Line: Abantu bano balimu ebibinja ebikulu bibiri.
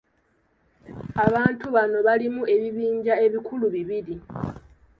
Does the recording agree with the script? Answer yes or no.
yes